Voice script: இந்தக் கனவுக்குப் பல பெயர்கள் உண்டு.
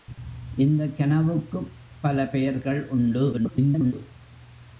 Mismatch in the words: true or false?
true